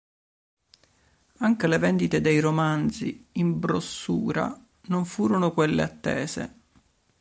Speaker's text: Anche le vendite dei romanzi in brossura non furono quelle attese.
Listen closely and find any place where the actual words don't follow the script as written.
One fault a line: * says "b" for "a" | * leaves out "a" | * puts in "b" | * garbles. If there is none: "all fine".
all fine